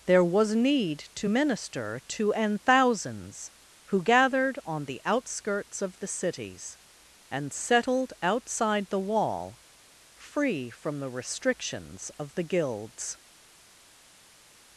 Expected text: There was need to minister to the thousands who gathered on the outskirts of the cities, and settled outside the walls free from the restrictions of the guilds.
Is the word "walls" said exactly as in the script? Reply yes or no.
no